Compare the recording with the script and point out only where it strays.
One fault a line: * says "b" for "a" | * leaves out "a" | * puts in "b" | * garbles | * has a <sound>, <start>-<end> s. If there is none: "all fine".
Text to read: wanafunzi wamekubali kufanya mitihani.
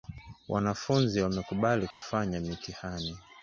* has a dropout, 1.9-2.0 s